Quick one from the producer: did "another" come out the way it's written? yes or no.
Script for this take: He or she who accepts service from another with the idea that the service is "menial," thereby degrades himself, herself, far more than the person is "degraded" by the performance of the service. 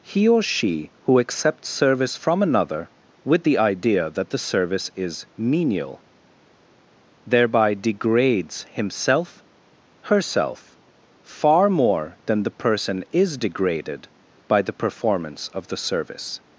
yes